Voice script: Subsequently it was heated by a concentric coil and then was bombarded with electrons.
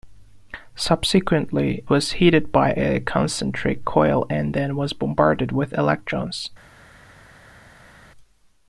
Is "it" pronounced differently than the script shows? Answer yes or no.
yes